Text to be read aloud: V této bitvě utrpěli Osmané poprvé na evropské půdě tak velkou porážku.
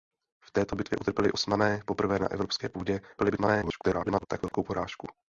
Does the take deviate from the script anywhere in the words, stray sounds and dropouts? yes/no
yes